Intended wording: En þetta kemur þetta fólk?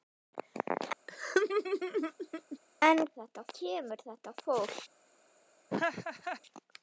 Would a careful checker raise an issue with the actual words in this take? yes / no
no